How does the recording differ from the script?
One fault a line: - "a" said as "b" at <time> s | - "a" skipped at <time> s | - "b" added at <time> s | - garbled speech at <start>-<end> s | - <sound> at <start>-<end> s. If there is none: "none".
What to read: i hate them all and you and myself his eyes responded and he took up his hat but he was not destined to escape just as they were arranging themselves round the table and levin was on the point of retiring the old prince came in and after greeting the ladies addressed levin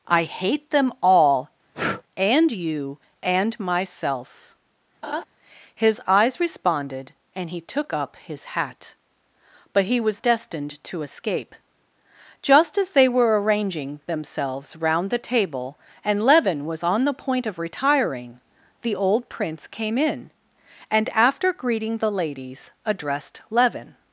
- breath at 1.7-2.0 s
- laugh at 5.0-5.2 s
- "not" skipped at 10.2 s